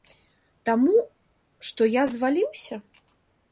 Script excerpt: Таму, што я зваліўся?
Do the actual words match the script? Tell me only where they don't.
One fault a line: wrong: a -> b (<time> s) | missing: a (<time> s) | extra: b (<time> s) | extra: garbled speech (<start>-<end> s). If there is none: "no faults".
no faults